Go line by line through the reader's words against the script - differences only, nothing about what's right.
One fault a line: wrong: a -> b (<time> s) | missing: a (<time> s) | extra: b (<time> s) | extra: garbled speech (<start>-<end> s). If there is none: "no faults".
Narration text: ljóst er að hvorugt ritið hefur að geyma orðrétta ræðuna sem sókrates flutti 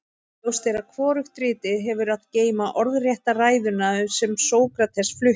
no faults